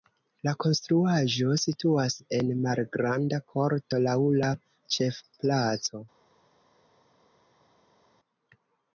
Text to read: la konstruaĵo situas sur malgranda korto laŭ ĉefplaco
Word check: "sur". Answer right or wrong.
wrong